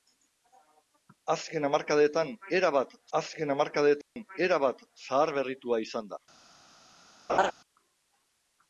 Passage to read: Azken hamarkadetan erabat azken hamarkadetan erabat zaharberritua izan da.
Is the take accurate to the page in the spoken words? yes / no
yes